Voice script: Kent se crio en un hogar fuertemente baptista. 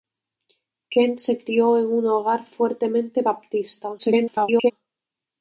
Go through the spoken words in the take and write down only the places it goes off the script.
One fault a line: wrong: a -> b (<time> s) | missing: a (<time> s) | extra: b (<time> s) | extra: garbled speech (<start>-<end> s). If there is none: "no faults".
extra: garbled speech (4.0-4.7 s)